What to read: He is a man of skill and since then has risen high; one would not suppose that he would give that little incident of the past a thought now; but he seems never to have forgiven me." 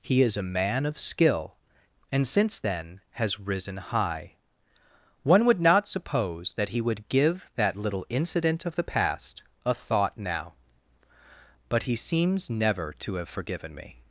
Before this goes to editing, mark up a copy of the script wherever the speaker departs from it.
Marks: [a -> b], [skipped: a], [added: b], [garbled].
He is a man of skill and since then has risen high; one would not suppose that he would give that little incident of the past a thought now; but he seems never to have forgiven me."